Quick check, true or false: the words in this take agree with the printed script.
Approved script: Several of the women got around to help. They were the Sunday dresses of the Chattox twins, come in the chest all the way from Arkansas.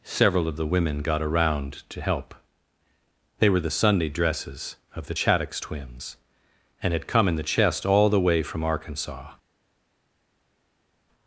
false